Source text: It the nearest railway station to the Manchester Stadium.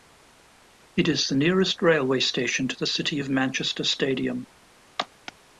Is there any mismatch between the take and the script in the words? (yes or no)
yes